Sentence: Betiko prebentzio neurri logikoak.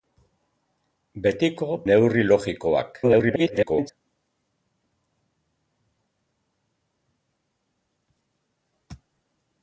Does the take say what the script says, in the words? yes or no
no